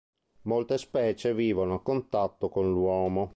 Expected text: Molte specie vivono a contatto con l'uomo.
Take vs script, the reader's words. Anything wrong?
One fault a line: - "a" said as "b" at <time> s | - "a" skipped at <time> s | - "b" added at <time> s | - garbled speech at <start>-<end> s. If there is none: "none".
none